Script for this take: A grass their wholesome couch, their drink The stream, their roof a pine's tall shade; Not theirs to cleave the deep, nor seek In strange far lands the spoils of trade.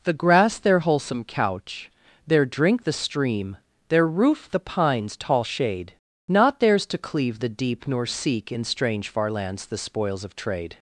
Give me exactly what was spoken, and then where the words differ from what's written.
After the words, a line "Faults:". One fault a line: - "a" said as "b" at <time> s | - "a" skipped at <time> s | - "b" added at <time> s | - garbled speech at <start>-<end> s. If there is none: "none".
The grass their wholesome couch, their drink The stream, their roof the pine's tall shade; Not theirs to cleave the deep, nor seek In strange far lands the spoils of trade.
Faults:
- "A" said as "The" at 0.0 s
- "a" said as "the" at 4.5 s